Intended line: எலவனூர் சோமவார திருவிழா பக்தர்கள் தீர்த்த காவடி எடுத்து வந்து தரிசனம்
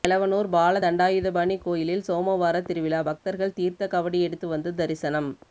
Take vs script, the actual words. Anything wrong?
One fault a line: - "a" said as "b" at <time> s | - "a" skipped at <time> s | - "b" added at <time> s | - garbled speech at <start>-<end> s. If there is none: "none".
- "பால தண்டாயுதபாணி கோயிலில்" added at 0.5 s